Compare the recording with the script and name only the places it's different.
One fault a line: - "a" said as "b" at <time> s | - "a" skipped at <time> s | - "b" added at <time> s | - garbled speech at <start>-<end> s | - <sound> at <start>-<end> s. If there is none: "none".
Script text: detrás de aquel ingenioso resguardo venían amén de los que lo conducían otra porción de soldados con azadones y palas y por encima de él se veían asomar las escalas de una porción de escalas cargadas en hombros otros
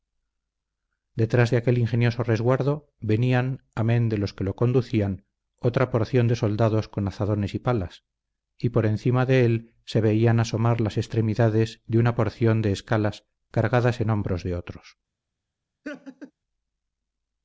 - "escalas" said as "extremidades" at 11.0 s
- "de" added at 14.4 s
- laugh at 15.8-16.3 s